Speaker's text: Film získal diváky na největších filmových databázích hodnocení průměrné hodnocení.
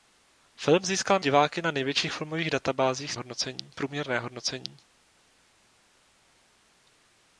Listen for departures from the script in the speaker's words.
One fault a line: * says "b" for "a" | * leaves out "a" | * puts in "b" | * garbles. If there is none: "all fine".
all fine